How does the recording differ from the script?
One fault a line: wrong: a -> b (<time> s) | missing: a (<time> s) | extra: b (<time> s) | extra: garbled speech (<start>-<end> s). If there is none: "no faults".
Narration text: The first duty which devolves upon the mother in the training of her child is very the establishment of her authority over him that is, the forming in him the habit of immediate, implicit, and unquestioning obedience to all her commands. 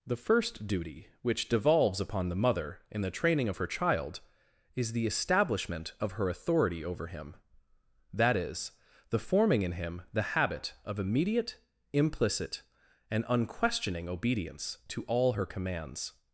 missing: very (4.9 s)